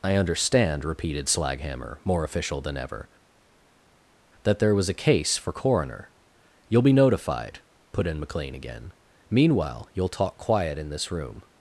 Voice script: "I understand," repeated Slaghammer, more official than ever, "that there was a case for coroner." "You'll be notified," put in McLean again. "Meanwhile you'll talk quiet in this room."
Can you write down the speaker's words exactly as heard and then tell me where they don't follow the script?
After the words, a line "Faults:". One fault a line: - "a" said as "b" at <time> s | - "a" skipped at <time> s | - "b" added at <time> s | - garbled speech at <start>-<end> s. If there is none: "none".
"I understand," repeated Slaghammer, more official than ever, "that there was a case for coroner." "You'll be notified," put in McLean again. "Meanwhile you'll talk quiet in this room."
Faults:
none